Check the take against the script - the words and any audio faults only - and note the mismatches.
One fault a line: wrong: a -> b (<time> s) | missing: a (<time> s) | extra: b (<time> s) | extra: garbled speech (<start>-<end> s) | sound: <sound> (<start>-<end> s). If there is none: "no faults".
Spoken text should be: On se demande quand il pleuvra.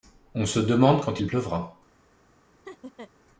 sound: laugh (2.6-3.1 s)